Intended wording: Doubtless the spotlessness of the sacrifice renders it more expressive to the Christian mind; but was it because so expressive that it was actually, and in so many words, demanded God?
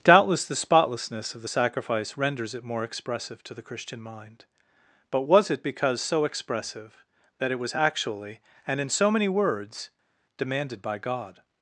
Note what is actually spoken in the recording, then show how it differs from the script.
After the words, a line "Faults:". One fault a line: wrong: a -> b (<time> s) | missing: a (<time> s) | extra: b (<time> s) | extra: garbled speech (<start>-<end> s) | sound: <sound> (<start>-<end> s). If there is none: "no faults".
Doubtless the spotlessness of the sacrifice renders it more expressive to the Christian mind; but was it because so expressive that it was actually, and in so many words, demanded by God?
Faults:
extra: by (10.8 s)